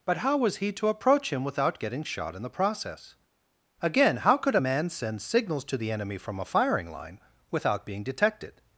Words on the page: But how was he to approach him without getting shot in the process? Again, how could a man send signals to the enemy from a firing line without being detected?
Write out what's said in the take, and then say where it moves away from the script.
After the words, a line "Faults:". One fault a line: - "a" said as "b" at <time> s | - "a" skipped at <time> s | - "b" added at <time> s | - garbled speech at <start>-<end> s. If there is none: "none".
But how was he to approach him without getting shot in the process? Again, how could a man send signals to the enemy from a firing line without being detected?
Faults:
none